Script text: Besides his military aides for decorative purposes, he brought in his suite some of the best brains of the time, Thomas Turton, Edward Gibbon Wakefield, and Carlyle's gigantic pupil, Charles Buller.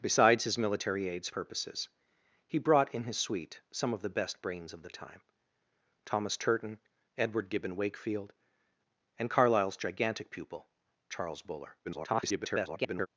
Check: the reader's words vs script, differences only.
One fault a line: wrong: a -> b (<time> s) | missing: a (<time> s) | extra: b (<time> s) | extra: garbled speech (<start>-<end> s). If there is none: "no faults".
missing: for decorative (1.3 s)
extra: garbled speech (11.8-13.1 s)